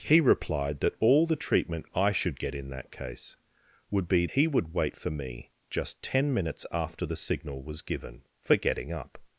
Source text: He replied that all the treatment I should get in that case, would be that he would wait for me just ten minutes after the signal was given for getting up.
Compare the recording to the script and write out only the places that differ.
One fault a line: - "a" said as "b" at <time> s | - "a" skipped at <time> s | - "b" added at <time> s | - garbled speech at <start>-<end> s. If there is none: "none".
- "that" skipped at 4.2 s